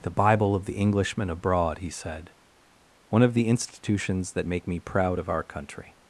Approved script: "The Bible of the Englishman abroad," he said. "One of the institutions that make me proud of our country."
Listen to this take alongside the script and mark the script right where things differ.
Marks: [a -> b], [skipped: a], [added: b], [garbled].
"The Bible of the Englishman abroad," he said. "One of the institutions that make me proud of our country."